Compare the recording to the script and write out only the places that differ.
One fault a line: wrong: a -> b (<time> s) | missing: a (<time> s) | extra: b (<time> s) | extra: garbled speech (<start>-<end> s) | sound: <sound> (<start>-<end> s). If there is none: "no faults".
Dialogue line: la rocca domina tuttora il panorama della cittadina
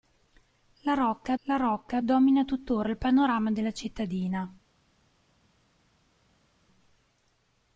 extra: la rocca (1.4 s)